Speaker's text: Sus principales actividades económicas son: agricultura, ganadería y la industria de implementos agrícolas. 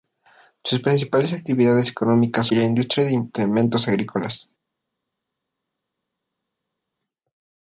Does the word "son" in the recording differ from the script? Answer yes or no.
yes